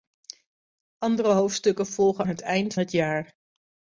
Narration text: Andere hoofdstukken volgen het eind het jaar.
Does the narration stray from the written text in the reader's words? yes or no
no